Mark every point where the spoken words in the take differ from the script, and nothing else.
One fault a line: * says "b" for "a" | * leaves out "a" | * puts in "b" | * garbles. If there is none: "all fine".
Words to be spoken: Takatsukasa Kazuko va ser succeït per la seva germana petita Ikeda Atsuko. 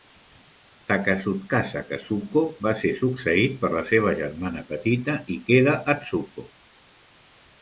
all fine